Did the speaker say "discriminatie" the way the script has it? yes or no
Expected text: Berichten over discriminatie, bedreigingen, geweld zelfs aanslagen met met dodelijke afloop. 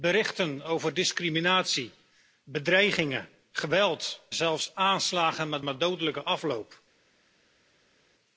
yes